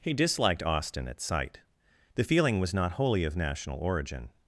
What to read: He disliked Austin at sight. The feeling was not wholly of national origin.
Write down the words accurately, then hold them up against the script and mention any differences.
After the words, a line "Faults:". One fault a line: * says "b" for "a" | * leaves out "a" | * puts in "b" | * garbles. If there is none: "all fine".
He disliked Austin at sight. The feeling was not wholly of national origin.
Faults:
all fine